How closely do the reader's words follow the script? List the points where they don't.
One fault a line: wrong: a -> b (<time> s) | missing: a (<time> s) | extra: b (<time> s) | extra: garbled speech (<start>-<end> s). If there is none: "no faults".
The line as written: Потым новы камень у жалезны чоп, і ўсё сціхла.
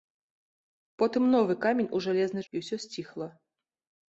missing: чоп (2.4 s)